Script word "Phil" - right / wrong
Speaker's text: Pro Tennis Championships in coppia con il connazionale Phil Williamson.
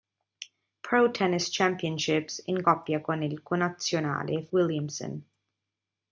wrong